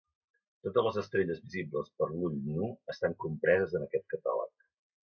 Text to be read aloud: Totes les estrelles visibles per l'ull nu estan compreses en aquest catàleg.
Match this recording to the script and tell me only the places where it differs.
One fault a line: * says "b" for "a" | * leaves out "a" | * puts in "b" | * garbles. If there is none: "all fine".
all fine